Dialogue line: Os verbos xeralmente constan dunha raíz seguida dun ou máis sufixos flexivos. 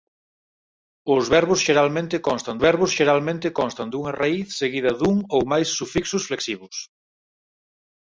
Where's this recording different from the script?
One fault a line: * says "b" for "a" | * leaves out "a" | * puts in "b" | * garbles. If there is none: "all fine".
* puts in "verbos xeralmente constan"